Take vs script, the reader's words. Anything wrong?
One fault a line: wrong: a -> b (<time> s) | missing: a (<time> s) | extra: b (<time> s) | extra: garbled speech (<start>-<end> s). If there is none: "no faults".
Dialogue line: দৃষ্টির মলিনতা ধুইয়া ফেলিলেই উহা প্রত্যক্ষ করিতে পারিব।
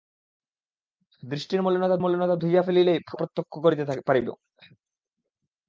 extra: মলিনতা (2.0 s)
missing: উহা (3.0 s)